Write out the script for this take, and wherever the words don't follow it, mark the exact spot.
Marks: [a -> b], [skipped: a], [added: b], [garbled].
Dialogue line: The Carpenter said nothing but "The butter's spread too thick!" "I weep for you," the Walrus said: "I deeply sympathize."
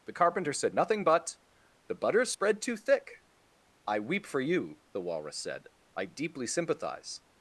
The Carpenter said nothing but "The butter's spread too thick!" "I weep for you," the Walrus said: "I deeply sympathize."